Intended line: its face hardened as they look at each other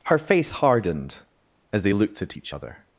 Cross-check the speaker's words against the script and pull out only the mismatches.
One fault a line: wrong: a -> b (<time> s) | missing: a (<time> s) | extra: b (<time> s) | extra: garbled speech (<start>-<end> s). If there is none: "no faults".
wrong: its -> her (0.1 s)
wrong: look -> looked (1.9 s)